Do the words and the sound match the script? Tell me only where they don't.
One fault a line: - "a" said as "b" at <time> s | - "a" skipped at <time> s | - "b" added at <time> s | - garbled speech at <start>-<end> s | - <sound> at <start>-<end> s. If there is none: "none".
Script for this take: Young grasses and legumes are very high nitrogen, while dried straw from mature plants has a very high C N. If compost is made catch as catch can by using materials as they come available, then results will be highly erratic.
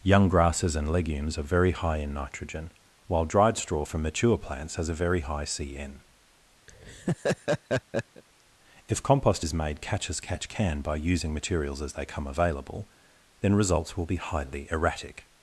- "in" added at 2.0 s
- laugh at 6.7-8.2 s